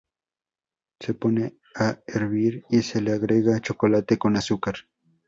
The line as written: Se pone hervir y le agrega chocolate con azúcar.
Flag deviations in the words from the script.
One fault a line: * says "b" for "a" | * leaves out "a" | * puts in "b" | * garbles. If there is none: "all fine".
* puts in "a"
* puts in "se"